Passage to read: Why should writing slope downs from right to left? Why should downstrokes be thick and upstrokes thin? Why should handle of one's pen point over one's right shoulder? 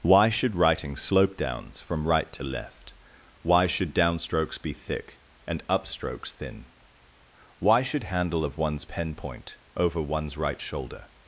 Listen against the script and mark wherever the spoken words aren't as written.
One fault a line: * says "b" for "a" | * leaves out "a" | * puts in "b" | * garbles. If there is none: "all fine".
all fine